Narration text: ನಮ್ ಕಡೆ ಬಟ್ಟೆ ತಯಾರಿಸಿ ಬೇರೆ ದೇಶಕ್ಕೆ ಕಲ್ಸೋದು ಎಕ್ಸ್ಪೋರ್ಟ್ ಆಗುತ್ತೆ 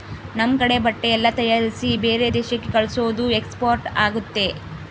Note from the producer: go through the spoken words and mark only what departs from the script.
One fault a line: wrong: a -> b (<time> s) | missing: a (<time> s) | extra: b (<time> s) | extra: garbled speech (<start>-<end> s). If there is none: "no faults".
extra: ಎಲ್ಲ (1.1 s)